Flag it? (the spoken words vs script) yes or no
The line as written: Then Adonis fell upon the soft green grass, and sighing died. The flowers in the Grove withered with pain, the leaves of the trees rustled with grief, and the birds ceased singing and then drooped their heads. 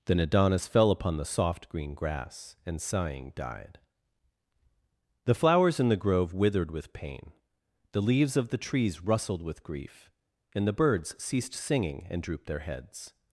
yes